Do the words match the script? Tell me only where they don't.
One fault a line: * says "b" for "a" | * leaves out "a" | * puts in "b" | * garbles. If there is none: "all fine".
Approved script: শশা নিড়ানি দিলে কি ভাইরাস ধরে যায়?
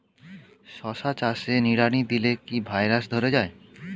* puts in "চাষে"